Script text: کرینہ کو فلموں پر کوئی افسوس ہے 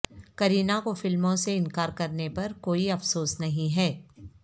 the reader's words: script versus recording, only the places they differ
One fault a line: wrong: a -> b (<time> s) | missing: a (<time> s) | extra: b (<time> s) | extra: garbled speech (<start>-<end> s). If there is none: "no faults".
extra: سے انکار کرنے (1.4 s)
extra: نہیں (3.4 s)